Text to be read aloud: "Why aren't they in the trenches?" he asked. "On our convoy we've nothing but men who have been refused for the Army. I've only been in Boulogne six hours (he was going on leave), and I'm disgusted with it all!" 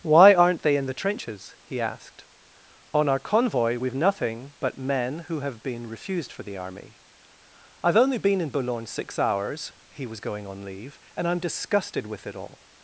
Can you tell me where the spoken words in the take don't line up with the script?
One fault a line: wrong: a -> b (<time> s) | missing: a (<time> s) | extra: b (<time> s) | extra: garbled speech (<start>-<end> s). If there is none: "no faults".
no faults